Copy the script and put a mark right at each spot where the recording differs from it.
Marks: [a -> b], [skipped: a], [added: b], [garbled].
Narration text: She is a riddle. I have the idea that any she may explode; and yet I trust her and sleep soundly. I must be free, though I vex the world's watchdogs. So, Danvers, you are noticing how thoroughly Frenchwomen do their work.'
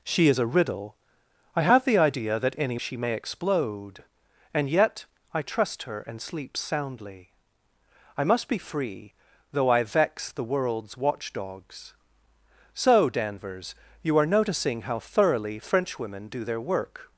She is a riddle. I have the idea that any she may explode; and yet I trust her and sleep soundly. I must be free, though I vex the world's watchdogs. So, Danvers, you are noticing how thoroughly Frenchwomen do their work.'